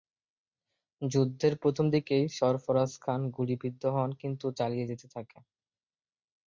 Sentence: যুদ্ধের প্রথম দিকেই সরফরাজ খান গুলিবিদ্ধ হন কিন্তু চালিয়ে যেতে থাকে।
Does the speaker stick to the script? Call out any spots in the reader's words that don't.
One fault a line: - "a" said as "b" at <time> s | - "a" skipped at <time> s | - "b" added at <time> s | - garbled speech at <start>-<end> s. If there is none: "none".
none